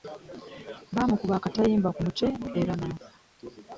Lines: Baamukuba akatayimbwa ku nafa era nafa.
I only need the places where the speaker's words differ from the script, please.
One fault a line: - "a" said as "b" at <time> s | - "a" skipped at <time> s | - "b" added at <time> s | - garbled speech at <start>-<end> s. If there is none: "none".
- "nafa" said as "mutwe" at 2.0 s